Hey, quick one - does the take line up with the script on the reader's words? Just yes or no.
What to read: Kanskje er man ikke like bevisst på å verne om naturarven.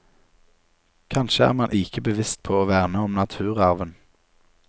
no